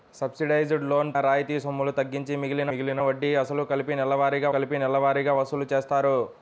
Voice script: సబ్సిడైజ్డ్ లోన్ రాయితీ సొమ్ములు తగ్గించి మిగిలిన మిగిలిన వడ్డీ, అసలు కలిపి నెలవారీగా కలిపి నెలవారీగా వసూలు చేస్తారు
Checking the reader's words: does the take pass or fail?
pass